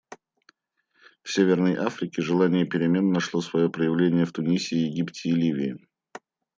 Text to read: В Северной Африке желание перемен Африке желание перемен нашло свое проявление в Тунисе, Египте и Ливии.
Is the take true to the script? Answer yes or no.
no